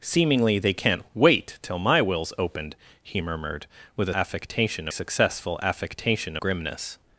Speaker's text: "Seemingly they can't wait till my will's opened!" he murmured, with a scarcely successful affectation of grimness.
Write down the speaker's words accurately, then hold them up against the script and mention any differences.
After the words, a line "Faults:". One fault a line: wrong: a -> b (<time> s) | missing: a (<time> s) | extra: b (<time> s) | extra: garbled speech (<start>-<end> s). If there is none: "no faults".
"Seemingly they can't wait till my will's opened!" he murmured, with a affectation successful affectation grimness.
Faults:
wrong: scarcely -> affectation (4.1 s)
missing: of (6.4 s)